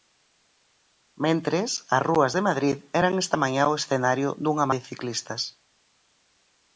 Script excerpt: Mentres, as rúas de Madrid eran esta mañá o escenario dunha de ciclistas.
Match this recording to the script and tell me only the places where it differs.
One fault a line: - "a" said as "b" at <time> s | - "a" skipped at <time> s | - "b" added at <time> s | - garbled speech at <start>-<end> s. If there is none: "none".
none